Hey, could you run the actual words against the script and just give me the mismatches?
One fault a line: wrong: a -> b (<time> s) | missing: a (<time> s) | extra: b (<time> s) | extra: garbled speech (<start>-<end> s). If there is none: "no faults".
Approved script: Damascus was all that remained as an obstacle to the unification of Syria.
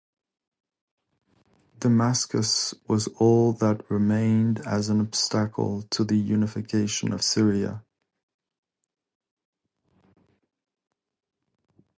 no faults